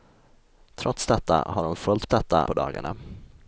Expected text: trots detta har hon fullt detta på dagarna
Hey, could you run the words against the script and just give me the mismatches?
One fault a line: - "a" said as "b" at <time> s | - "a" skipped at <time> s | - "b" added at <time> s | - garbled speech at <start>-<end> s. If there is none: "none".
none